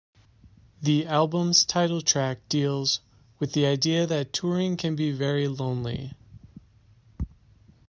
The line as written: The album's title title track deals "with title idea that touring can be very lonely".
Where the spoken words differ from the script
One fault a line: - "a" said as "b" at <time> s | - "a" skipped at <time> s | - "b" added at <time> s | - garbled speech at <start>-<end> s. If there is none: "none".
- "title" skipped at 2.0 s
- "title" said as "the" at 3.5 s